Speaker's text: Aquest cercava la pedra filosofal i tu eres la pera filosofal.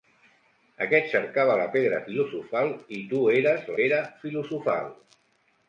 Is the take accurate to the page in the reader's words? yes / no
no